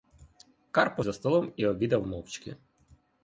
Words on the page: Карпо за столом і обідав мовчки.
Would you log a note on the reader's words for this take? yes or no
no